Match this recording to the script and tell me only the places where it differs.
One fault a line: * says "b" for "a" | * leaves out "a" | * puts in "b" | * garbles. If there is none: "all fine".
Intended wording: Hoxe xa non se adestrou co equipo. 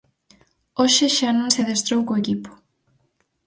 all fine